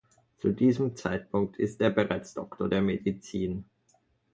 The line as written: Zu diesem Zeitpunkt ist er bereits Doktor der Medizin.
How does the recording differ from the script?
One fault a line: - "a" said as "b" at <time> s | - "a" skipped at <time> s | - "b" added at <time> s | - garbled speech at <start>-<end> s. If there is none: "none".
none